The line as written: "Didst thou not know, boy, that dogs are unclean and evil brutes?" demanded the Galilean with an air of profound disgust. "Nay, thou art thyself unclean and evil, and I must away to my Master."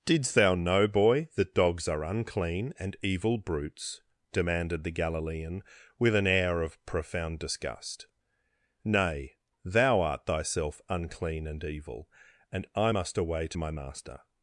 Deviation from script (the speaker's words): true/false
true